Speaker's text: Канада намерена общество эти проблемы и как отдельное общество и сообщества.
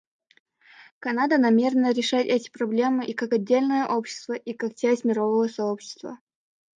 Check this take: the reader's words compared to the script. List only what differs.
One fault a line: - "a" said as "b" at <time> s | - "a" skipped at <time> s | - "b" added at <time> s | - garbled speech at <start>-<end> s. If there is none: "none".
- "общество" said as "решать" at 1.9 s
- "как часть мирового" added at 4.5 s